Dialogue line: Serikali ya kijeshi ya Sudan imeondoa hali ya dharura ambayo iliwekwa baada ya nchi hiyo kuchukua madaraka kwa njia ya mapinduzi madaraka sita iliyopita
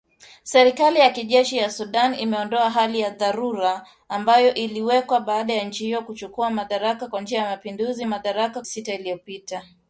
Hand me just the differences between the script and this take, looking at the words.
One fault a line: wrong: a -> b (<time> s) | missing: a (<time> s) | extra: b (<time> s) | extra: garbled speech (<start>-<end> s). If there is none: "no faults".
no faults